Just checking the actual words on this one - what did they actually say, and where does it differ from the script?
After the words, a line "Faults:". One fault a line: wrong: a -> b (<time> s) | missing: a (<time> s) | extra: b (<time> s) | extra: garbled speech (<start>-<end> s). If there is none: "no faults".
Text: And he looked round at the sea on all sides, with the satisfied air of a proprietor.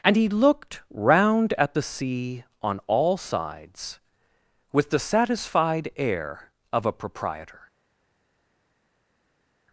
And he looked round at the sea on all sides, with the satisfied air of a proprietor.
Faults:
no faults